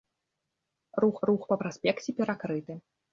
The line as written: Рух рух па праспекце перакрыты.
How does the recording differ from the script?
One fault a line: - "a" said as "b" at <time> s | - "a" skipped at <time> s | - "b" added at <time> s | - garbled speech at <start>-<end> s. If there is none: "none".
none